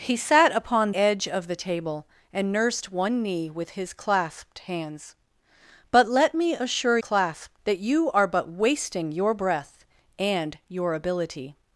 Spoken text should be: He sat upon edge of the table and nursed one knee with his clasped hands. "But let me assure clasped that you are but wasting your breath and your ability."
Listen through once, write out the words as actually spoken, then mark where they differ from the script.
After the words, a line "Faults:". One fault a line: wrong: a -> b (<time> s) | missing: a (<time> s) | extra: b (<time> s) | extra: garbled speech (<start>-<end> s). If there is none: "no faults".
He sat upon edge of the table and nursed one knee with his clasped hands. "But let me assure clasped that you are but wasting your breath and your ability."
Faults:
no faults